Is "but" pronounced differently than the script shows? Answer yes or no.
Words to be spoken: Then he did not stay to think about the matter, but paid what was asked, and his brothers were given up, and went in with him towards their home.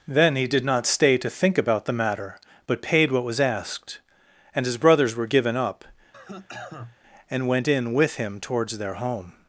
no